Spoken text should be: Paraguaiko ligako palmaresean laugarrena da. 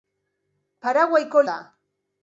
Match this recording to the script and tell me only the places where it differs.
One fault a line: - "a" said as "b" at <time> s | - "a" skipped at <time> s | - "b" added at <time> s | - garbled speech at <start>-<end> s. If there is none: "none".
- "ligako palmaresean laugarrena" skipped at 1.4 s